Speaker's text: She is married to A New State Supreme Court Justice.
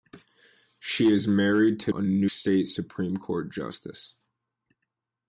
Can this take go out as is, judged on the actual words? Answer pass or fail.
pass